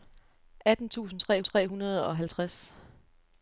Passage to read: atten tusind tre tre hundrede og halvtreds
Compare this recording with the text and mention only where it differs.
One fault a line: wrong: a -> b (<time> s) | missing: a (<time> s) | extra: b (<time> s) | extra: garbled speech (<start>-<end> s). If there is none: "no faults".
no faults